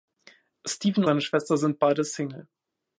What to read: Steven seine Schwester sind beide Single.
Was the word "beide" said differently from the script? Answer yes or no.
no